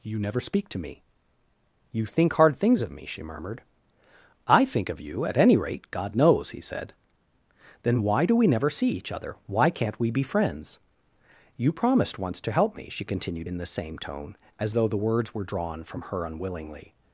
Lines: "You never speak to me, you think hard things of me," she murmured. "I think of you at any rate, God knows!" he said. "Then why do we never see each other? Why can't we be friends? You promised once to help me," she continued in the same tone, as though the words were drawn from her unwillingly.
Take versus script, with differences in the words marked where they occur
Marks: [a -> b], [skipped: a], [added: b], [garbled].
"You never speak to me, you think hard things of me," she murmured. "I think of you at any rate, God knows!" he said. "Then why do we never see each other? Why can't we be friends? You promised once to help me," she continued in the same tone, as though the words were drawn from her unwillingly.